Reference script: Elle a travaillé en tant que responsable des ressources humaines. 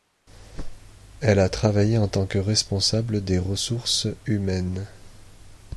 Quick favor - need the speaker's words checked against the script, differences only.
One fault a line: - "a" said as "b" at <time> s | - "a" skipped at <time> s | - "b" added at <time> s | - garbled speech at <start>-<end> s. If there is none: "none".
none